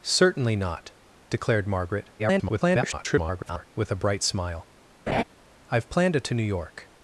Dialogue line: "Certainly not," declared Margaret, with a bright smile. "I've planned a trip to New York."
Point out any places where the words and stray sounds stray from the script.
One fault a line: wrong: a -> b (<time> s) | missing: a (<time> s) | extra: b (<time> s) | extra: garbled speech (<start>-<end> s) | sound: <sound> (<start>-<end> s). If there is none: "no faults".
extra: garbled speech (2.2-3.7 s)
sound: laugh (5.1-5.2 s)
missing: trip (6.2 s)